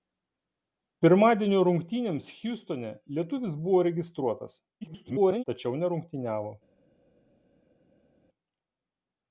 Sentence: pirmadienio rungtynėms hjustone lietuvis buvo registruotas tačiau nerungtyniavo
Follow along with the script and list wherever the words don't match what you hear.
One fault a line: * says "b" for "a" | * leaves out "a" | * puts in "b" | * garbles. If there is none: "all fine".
* garbles